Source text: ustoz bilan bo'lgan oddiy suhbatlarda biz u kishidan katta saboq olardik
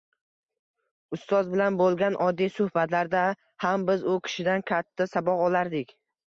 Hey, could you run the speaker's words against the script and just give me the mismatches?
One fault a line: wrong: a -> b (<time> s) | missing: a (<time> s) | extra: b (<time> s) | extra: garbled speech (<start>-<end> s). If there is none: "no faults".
extra: ham (3.7 s)